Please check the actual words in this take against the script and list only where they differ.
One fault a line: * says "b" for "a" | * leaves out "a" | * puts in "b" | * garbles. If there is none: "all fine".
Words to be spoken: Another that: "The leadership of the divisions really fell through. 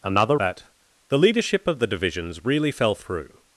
all fine